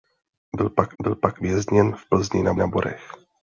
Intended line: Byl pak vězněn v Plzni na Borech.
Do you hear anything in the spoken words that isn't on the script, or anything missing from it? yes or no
yes